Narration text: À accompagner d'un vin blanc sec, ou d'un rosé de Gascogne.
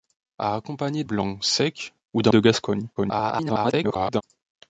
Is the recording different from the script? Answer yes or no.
yes